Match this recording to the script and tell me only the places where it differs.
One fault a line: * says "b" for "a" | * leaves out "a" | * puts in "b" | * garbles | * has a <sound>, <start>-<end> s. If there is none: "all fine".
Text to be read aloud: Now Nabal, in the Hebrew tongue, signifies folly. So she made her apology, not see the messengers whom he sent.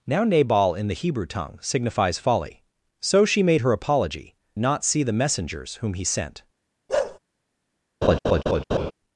* has a bark, 6.9-7.2 s
* has a laugh, 8.0-8.9 s